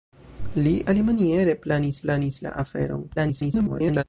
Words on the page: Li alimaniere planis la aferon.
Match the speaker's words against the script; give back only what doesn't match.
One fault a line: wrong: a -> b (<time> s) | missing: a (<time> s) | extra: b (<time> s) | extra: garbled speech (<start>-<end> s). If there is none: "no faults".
extra: planis (2.0 s)
extra: garbled speech (3.2-4.0 s)